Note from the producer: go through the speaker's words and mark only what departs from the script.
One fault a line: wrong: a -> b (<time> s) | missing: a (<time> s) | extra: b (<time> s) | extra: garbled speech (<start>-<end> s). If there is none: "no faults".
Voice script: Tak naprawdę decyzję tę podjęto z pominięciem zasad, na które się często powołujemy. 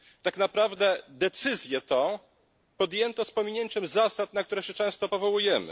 no faults